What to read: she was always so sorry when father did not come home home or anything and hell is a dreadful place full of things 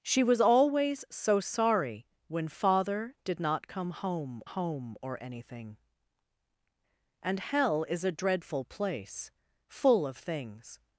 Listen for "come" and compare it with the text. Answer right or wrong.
right